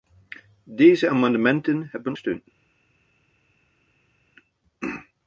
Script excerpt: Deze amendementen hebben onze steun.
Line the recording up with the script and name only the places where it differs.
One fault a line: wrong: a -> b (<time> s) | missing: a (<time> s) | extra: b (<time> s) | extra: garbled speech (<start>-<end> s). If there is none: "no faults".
missing: onze (2.1 s)